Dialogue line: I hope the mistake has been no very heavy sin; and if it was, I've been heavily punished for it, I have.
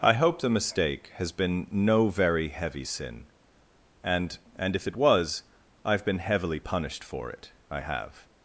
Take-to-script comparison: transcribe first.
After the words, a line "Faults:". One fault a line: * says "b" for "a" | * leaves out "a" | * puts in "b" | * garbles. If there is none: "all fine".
I hope the mistake has been no very heavy sin; and and if it was, I've been heavily punished for it, I have.
Faults:
* puts in "and"